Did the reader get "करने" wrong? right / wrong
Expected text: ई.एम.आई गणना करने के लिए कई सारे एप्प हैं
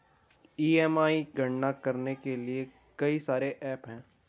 right